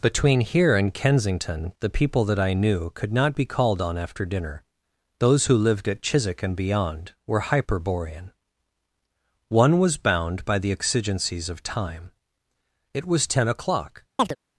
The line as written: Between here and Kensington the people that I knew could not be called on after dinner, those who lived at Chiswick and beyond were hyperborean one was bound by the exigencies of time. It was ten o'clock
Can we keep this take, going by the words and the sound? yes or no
no